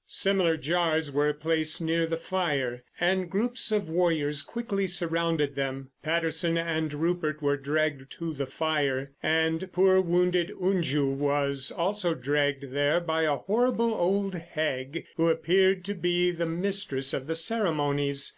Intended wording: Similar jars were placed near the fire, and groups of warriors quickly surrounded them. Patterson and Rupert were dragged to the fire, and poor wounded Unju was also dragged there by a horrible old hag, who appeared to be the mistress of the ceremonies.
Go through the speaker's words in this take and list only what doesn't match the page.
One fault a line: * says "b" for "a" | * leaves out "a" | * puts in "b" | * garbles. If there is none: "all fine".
all fine